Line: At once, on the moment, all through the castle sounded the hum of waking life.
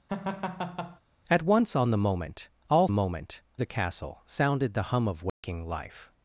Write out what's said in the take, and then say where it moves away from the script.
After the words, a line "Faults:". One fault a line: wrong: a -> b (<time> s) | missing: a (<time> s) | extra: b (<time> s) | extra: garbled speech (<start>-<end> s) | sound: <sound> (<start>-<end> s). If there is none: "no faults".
At once, on the moment, all moment the castle sounded the hum of waking life.
Faults:
sound: laugh (0.1-1.0 s)
wrong: through -> moment (2.9 s)
sound: dropout (5.3-5.4 s)